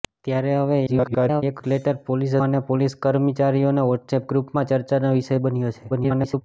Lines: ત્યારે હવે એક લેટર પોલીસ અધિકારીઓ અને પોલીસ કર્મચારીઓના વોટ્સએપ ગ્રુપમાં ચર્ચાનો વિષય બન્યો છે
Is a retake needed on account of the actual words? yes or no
yes